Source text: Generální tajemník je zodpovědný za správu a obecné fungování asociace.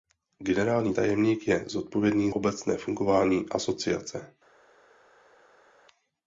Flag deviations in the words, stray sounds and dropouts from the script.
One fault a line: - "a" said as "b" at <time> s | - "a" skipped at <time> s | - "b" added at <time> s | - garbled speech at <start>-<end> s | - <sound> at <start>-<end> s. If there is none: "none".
- "za správu a" skipped at 2.3 s